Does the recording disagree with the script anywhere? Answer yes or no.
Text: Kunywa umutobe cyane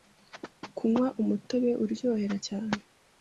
yes